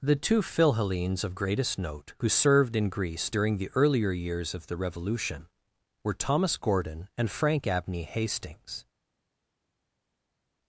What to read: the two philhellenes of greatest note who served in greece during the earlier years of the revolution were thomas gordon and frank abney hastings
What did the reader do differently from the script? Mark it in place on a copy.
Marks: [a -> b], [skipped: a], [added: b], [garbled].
the two philhellenes of greatest note who served in greece during the earlier years of the revolution were thomas gordon and frank abney hastings